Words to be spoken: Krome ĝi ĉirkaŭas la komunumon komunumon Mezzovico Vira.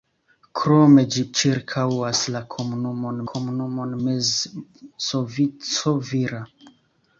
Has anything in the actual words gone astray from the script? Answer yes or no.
no